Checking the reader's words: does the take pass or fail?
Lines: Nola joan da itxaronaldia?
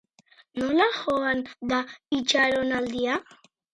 pass